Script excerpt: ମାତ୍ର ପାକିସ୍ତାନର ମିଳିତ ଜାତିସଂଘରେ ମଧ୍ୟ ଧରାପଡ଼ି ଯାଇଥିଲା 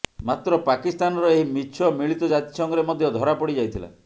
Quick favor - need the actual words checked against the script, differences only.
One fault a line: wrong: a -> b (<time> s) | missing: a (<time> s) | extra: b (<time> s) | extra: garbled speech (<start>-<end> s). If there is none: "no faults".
extra: ଏହି ମିଛ (1.3 s)